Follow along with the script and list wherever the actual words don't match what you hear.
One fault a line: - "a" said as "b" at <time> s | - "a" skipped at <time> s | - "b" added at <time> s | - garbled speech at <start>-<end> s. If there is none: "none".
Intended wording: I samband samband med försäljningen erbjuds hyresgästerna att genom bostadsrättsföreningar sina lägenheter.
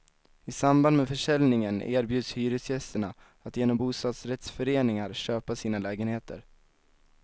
- "samband" skipped at 1.0 s
- "köpa" added at 5.1 s